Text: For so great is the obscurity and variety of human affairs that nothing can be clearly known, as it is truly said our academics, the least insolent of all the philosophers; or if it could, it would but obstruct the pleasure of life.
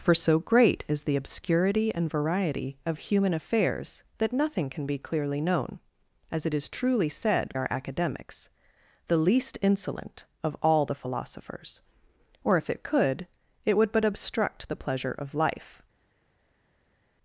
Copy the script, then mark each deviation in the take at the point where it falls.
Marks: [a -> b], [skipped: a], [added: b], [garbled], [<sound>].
For so great is the obscurity and variety of human affairs that nothing can be clearly known, as it is truly said our academics, the least insolent of all the philosophers; or if it could, it would but obstruct the pleasure of life.